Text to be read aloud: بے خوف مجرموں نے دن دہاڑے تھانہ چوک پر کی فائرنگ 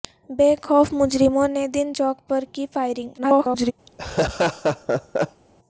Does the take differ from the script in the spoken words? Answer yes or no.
yes